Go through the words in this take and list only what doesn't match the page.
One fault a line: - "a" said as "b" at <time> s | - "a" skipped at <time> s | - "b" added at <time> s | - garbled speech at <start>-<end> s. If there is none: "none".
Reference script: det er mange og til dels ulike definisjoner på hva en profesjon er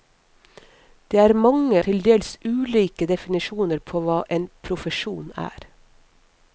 - "og" skipped at 1.8 s